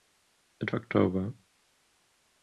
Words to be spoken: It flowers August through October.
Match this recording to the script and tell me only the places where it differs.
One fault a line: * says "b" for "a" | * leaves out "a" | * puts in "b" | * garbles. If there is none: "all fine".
* leaves out "flowers August through"